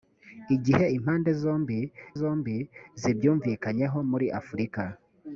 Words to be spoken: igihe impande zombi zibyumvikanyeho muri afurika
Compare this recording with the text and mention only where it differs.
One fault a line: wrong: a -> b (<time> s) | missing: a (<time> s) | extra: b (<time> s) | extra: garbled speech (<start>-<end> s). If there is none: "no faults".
extra: zombi (2.2 s)